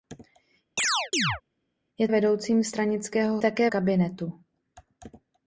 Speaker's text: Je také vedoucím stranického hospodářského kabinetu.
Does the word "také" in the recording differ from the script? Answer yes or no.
yes